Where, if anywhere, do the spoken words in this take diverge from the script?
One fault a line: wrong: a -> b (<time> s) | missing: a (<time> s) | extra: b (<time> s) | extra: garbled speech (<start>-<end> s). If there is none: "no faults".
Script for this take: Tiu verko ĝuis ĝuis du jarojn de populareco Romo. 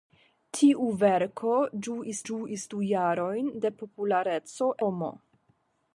no faults